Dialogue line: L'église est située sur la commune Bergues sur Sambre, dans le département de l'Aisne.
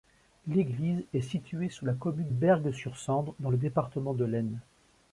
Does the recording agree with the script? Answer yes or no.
yes